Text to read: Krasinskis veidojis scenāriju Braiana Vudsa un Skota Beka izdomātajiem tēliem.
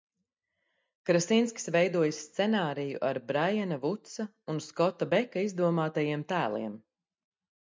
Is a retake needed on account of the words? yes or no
yes